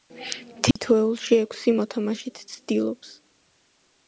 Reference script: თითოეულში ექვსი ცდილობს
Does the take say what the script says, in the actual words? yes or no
no